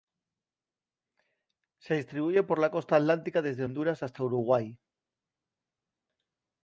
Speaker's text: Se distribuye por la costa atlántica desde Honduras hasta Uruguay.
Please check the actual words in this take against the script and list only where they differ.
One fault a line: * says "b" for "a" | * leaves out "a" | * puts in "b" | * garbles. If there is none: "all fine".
all fine